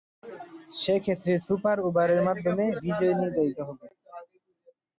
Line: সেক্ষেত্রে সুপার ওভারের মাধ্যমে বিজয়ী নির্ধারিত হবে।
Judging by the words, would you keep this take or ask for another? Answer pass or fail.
pass